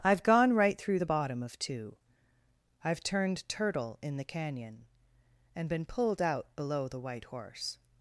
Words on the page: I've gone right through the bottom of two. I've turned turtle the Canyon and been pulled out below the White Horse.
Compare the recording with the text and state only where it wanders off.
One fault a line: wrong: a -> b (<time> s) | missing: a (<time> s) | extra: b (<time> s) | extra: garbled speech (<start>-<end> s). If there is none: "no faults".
extra: in (4.0 s)